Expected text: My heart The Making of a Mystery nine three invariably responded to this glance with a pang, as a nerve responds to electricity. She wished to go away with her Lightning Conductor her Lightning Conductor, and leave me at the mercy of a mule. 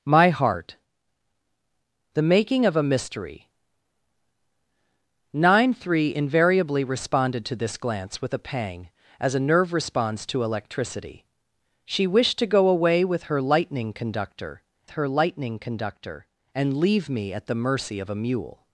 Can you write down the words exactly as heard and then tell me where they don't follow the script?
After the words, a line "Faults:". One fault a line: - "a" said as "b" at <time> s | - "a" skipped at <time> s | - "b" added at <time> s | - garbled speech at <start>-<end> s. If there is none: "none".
My heart The Making of a Mystery nine three invariably responded to this glance with a pang, as a nerve responds to electricity. She wished to go away with her Lightning Conductor her Lightning Conductor, and leave me at the mercy of a mule.
Faults:
none